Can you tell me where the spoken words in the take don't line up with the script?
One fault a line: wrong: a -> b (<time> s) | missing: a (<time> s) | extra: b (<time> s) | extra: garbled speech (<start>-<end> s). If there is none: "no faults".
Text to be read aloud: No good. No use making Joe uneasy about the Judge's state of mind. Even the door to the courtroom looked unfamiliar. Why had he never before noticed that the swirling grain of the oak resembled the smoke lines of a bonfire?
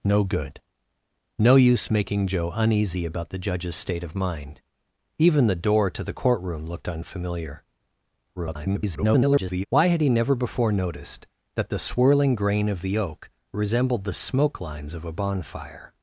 extra: garbled speech (8.4-9.7 s)